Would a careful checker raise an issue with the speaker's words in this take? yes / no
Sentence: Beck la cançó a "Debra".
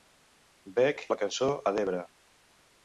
no